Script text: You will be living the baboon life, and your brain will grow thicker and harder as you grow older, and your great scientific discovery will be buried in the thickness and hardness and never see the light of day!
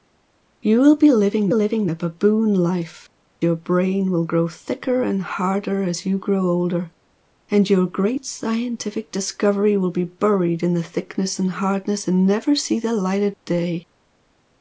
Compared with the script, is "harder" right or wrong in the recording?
right